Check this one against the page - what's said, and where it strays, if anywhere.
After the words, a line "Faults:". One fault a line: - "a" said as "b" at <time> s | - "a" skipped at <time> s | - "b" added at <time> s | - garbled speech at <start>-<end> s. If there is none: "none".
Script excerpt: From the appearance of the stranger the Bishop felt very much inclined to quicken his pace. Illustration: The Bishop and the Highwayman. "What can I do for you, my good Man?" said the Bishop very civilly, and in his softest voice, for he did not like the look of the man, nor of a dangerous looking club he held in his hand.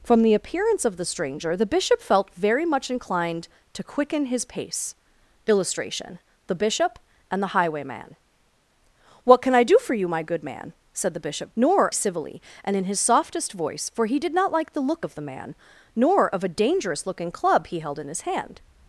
From the appearance of the stranger the Bishop felt very much inclined to quicken his pace. Illustration: The Bishop and the Highwayman. "What can I do for you, my good Man?" said the Bishop nor civilly, and in his softest voice, for he did not like the look of the man, nor of a dangerous looking club he held in his hand.
Faults:
- "very" said as "nor" at 11.6 s